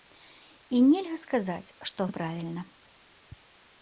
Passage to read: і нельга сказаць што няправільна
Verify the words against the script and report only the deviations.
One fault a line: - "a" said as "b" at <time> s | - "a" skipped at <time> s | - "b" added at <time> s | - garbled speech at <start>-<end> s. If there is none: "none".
none